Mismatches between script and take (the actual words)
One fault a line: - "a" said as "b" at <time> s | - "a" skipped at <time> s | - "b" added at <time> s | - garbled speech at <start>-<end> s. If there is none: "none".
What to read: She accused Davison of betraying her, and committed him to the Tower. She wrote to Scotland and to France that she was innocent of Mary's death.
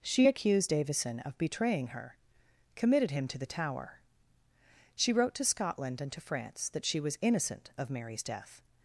- "and" skipped at 2.2 s